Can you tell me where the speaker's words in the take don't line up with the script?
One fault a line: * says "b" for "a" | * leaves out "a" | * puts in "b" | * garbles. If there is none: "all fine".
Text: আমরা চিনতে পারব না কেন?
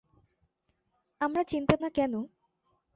* leaves out "পারব"